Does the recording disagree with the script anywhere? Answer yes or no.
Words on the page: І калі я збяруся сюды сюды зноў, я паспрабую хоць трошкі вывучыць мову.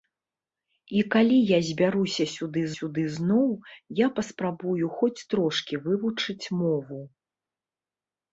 no